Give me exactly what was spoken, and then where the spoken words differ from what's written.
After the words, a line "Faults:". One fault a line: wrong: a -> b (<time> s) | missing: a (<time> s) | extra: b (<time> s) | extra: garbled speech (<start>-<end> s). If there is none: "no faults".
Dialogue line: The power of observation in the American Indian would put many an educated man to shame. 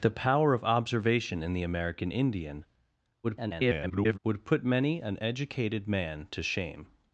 The power of observation in the American Indian [garbled] would put many an educated man to shame.
Faults:
extra: garbled speech (3.2-4.2 s)